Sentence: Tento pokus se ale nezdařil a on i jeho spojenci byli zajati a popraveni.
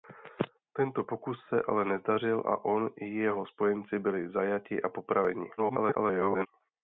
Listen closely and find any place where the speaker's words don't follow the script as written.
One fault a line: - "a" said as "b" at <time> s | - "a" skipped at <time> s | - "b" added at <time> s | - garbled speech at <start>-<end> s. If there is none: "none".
- garbled speech at 5.6-6.5 s